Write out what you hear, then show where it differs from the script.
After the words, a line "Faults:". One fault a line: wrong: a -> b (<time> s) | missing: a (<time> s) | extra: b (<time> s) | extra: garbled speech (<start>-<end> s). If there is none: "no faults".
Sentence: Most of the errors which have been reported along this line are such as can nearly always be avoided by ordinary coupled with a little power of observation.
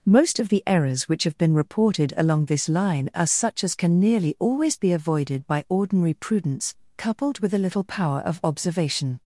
Most of the errors which have been reported along this line are such as can nearly always be avoided by ordinary prudence, coupled with a little power of observation.
Faults:
extra: prudence (6.2 s)